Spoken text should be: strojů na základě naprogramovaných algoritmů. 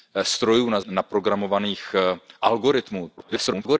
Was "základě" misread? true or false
true